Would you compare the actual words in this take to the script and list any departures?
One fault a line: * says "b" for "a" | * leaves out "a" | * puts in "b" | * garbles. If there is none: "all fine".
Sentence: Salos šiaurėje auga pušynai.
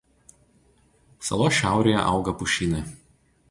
all fine